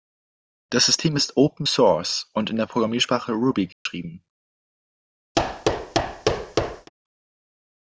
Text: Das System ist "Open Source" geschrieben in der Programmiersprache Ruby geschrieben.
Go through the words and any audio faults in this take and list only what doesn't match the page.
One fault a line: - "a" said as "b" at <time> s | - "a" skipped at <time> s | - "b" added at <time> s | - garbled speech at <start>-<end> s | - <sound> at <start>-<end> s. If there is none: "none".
- "geschrieben" said as "und" at 2.3 s
- dropout at 3.7-3.9 s
- thud at 5.3-6.9 s